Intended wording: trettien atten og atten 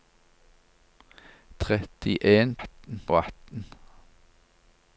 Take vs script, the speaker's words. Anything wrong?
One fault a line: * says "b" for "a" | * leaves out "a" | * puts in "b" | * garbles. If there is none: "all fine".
all fine